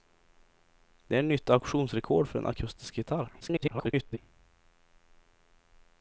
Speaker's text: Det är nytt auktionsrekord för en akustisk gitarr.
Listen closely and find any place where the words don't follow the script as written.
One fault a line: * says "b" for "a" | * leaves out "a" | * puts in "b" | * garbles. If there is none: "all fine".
* garbles